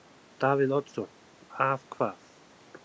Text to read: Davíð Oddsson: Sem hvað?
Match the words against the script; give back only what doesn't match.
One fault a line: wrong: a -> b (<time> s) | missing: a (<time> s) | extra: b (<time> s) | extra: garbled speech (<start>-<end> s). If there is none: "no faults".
wrong: Sem -> Að (1.7 s)